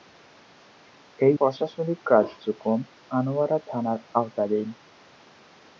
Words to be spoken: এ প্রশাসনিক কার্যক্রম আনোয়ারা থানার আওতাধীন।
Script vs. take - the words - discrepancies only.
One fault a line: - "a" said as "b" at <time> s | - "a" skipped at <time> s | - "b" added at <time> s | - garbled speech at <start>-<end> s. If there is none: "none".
none